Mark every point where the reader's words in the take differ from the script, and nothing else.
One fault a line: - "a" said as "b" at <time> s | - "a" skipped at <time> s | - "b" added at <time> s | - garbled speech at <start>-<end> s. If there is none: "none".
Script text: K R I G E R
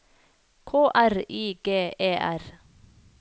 none